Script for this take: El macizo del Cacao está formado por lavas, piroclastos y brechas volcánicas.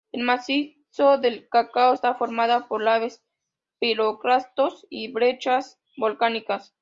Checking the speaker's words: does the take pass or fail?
pass